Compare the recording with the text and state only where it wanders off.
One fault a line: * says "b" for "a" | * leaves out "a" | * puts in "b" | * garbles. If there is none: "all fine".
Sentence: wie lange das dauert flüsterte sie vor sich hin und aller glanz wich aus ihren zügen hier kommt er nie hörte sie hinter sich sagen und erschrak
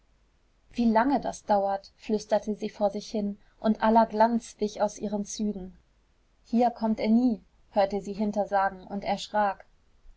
* leaves out "sich"